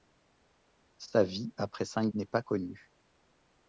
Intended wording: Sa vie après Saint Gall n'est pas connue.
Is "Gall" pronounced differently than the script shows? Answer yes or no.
yes